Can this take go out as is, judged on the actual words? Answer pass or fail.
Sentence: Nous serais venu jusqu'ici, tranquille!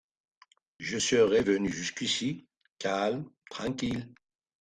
fail